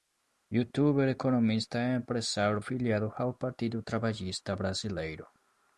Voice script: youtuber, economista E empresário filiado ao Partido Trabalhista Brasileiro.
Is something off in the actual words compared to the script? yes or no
no